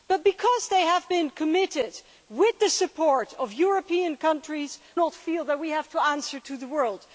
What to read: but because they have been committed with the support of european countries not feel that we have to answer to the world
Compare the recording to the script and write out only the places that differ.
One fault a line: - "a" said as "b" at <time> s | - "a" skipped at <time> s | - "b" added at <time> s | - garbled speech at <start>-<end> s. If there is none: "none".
none